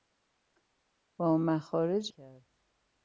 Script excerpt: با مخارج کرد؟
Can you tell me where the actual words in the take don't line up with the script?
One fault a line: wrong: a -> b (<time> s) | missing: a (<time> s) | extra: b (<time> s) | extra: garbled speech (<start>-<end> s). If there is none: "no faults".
no faults